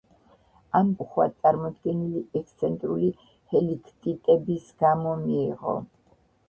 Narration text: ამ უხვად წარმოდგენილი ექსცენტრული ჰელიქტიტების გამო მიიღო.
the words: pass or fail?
pass